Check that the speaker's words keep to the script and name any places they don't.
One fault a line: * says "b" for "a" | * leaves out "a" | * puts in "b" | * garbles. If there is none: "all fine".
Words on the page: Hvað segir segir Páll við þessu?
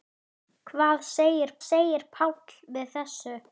all fine